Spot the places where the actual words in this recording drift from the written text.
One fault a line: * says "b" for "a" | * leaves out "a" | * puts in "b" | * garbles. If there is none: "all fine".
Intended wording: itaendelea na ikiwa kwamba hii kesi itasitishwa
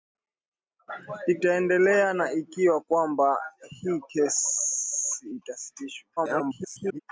* garbles